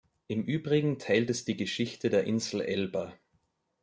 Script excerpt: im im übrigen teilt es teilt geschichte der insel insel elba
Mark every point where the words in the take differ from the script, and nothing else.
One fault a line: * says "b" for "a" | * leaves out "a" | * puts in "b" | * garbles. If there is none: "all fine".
* leaves out "im"
* says "die" for "teilt"
* leaves out "insel"